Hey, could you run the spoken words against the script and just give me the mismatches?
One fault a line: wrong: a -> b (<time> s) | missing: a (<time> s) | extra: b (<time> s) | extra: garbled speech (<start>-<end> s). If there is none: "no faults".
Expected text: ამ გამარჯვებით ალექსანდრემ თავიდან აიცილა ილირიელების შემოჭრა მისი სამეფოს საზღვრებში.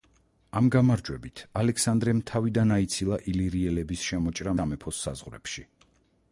missing: მისი (4.5 s)